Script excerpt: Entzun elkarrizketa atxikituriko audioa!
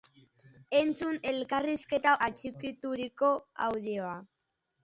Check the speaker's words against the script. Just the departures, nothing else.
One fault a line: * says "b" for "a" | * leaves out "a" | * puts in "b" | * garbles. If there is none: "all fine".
all fine